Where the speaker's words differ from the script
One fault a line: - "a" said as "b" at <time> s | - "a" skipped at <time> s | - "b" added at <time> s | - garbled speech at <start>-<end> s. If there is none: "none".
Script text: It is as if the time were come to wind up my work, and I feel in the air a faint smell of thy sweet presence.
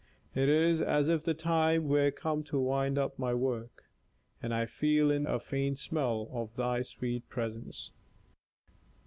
- "the air" skipped at 5.2 s